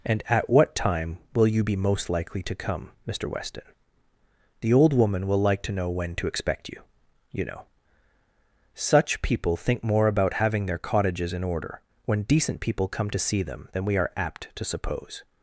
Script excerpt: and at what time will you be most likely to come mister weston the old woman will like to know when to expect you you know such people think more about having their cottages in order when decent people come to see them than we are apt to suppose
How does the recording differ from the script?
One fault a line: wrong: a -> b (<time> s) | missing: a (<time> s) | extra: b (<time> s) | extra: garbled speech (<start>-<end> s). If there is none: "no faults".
no faults